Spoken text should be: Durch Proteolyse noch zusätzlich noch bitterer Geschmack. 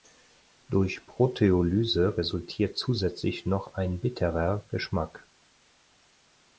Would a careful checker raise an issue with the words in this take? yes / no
yes